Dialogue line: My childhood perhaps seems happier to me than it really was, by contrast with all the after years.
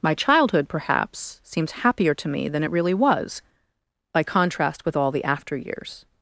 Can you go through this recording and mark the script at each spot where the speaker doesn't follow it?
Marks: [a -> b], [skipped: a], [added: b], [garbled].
My childhood perhaps seems happier to me than it really was, by contrast with all the after years.